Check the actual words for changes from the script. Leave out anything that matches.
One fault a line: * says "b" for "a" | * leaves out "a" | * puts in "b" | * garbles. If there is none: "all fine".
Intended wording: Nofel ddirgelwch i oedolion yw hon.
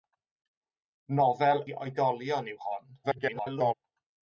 * leaves out "ddirgelwch"
* garbles